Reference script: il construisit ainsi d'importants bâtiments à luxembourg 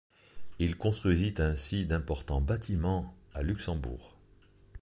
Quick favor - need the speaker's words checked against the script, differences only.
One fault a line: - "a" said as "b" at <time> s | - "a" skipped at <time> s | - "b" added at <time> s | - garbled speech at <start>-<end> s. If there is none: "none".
none